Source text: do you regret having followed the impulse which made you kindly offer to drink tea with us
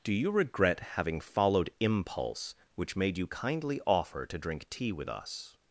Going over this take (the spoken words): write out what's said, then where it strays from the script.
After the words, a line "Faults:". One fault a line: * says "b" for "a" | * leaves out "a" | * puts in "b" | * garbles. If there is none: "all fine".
do you regret having followed impulse which made you kindly offer to drink tea with us
Faults:
* leaves out "the"